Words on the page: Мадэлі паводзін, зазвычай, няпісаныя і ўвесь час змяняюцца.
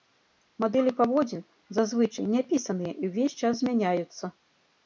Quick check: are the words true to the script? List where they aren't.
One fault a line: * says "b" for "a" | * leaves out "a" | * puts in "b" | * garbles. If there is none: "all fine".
all fine